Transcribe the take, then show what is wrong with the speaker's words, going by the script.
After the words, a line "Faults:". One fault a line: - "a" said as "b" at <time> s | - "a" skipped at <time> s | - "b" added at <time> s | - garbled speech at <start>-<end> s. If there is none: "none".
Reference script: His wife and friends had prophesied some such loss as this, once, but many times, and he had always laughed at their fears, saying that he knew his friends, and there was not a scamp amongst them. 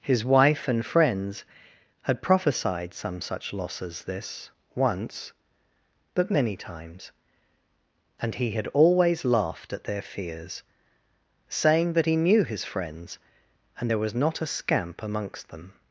His wife and friends had prophesied some such loss as this, once, but many times, and he had always laughed at their fears, saying that he knew his friends, and there was not a scamp amongst them.
Faults:
none